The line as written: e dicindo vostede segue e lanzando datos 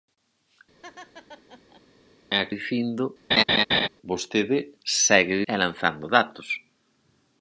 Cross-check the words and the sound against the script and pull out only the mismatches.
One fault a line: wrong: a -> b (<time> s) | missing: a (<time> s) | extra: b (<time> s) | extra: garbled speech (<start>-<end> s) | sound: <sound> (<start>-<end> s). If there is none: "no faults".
sound: laugh (0.8-1.8 s)
sound: laugh (3.3-3.9 s)